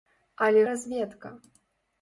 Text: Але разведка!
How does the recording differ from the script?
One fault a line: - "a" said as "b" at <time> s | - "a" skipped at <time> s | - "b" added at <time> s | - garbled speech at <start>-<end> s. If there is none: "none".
none